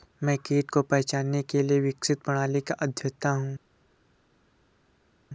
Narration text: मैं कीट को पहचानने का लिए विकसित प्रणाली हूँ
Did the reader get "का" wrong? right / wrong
wrong